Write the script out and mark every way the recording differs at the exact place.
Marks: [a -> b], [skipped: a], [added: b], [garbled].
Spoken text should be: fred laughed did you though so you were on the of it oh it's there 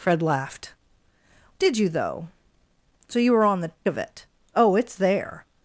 fred laughed did you though so you were on the of it oh it's there